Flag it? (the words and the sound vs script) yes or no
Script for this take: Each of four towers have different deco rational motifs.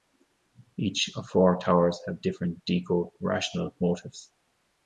no